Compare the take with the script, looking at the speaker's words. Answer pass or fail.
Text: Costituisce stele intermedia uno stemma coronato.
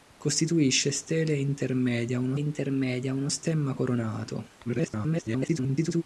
fail